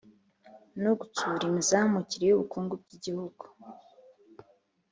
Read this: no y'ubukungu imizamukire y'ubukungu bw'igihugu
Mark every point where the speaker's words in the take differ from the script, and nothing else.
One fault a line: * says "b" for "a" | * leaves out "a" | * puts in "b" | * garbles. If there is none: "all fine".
* says "gutsura" for "y'ubukungu"